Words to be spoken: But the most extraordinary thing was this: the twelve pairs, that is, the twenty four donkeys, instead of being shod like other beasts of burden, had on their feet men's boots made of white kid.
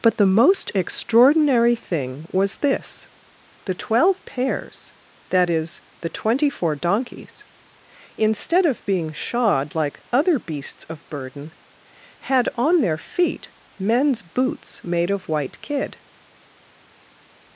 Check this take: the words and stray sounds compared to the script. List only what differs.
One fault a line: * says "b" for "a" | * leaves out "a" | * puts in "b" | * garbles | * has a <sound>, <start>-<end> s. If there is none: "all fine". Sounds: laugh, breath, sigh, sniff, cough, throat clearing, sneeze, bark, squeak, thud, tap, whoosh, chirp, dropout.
all fine